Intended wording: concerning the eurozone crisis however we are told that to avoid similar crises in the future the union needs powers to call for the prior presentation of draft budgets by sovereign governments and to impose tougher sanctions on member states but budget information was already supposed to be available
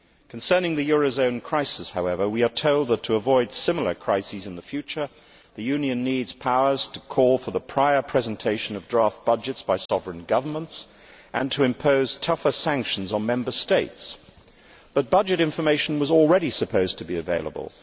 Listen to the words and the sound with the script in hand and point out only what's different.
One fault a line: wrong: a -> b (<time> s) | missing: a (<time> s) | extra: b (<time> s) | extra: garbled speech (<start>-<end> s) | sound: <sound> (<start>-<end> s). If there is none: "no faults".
sound: dropout (9.9-9.9 s)